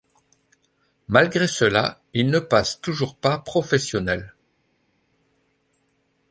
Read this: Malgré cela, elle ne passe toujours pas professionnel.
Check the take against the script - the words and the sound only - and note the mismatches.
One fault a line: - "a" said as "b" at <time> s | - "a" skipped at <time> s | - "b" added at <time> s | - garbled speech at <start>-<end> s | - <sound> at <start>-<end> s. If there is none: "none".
- "elle" said as "il" at 2.1 s